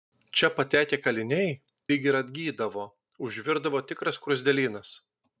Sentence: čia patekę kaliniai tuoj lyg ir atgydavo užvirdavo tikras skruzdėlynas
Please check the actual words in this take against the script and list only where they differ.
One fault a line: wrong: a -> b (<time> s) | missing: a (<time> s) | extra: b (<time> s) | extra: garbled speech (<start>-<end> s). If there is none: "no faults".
missing: tuoj (1.5 s)